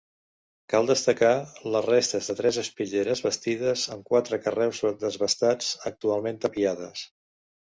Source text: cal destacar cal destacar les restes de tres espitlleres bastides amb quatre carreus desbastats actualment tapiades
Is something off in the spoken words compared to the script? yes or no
yes